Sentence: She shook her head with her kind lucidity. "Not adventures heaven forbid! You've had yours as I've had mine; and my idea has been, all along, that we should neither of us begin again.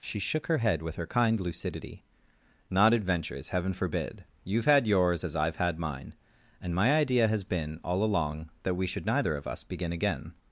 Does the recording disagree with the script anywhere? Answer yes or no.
no